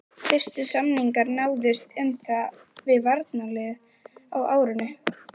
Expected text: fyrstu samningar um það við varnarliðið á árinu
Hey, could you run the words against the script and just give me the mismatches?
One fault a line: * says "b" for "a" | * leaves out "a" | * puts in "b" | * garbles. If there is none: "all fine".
* puts in "náðust"